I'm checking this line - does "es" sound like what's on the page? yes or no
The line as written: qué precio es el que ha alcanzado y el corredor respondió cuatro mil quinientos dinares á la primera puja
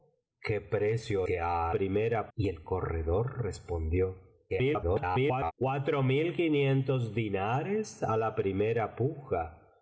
no